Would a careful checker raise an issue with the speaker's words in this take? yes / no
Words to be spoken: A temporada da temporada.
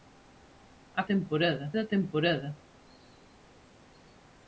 no